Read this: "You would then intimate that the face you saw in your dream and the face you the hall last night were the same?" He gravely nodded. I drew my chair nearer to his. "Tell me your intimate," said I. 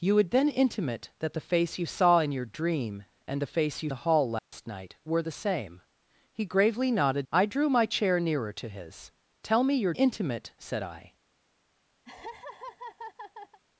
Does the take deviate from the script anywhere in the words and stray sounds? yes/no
yes